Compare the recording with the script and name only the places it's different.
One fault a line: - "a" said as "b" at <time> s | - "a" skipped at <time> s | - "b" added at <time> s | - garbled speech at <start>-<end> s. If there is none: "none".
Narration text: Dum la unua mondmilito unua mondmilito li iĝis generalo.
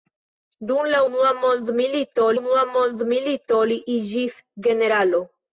none